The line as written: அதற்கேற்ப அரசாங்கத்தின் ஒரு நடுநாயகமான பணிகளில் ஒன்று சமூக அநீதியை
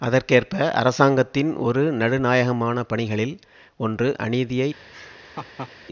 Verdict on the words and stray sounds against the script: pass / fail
fail